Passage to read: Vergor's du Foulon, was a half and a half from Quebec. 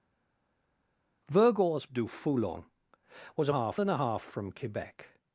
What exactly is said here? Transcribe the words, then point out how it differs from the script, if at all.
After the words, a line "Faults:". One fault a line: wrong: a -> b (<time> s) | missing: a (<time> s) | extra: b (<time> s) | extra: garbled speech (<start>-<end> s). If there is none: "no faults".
Vergor's du Foulon, was a half and a half from Quebec.
Faults:
no faults